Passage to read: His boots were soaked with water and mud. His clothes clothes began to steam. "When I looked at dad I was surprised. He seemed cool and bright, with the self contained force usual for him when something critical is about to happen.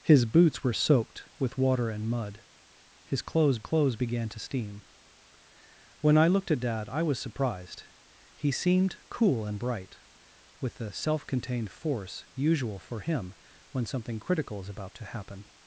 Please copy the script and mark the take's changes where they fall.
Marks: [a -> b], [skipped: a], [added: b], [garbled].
His boots were soaked with water and mud. His clothes clothes began to steam. "When I looked at dad I was surprised. He seemed cool and bright, with the self contained force usual for him when something critical is about to happen.